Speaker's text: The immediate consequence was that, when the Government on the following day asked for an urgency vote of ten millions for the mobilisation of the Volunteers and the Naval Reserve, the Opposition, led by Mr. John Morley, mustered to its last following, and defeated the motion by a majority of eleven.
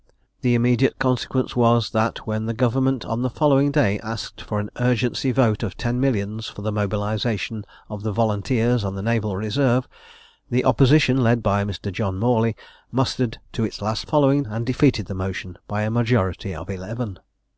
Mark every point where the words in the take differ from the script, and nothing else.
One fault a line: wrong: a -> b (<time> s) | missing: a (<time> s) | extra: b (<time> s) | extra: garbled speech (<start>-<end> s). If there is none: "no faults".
no faults